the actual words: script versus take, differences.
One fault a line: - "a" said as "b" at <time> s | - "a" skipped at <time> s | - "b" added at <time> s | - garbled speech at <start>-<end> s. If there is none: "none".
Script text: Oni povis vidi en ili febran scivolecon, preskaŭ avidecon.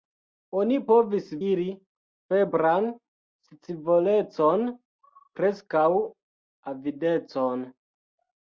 - "vidi en" skipped at 1.3 s